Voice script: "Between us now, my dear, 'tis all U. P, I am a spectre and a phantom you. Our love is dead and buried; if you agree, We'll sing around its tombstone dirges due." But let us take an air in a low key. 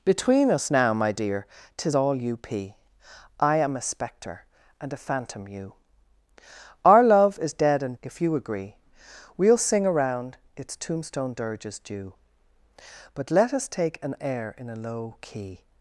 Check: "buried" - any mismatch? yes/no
yes